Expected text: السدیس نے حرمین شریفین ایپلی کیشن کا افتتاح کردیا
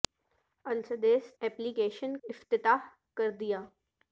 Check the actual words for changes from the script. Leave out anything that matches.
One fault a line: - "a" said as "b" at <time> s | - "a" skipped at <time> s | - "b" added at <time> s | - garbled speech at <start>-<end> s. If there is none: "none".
- "نے حرمین شریفین" skipped at 1.3 s
- "کا" skipped at 2.2 s